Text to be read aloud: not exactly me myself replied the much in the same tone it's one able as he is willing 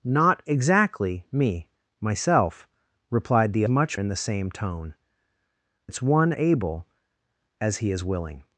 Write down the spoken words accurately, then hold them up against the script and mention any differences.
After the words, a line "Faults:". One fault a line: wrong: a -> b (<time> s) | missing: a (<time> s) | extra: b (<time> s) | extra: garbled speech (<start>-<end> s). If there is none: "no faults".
not exactly me myself replied the much in the same tone it's one able as he is willing
Faults:
no faults